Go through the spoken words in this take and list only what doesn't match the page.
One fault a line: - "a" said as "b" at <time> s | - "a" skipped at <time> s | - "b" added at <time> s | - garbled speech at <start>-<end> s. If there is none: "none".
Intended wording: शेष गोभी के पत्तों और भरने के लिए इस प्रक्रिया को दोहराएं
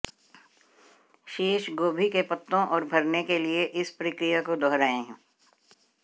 none